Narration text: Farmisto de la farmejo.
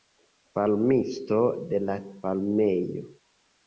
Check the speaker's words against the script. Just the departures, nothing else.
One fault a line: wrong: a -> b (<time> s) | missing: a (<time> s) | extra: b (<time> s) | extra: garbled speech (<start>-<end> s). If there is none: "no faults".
no faults